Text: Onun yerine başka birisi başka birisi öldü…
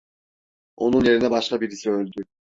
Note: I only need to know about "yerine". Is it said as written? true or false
true